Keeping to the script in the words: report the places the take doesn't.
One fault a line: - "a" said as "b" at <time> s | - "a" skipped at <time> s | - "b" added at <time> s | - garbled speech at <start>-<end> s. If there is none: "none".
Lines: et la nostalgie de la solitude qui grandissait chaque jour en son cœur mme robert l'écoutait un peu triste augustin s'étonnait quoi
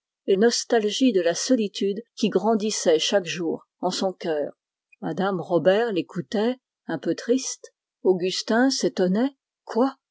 - "la" skipped at 0.3 s